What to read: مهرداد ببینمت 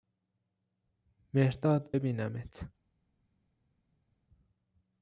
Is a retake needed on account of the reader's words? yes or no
no